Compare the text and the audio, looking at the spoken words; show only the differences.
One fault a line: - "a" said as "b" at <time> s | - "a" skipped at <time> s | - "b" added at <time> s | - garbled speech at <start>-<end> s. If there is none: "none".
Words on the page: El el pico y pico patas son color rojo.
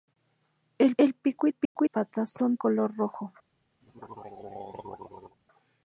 none